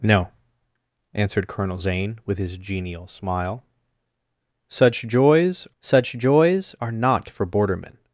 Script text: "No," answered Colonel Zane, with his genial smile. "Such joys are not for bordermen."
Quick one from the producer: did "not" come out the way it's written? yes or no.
yes